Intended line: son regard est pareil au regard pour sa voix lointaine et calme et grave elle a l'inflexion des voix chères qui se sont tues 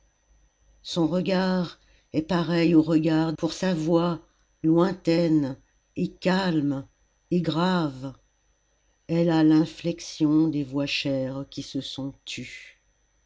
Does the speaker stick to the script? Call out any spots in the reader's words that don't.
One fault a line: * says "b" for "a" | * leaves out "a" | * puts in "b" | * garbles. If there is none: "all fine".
all fine